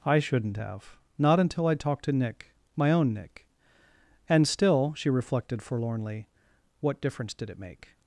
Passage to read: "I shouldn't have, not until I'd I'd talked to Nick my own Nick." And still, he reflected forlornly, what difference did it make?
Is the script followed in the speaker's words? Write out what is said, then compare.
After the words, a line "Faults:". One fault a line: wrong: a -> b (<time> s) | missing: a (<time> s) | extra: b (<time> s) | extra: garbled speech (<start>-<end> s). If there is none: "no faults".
"I shouldn't have, not until I'd talked to Nick my own Nick." And still, she reflected forlornly, what difference did it make?
Faults:
missing: I'd (1.8 s)
wrong: he -> she (4.9 s)